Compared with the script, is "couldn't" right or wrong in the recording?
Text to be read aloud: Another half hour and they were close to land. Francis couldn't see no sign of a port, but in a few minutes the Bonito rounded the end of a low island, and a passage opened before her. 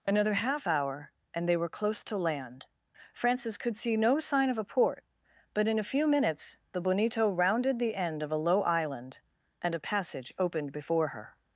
wrong